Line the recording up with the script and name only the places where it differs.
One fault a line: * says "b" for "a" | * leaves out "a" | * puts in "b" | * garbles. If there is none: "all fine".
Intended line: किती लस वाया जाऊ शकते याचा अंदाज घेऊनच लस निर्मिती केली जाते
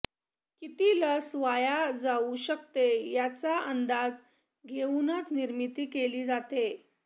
* leaves out "लस"